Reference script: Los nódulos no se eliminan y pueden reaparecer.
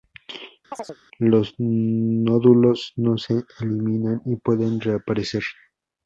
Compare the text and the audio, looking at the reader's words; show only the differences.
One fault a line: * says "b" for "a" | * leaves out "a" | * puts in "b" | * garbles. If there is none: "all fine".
all fine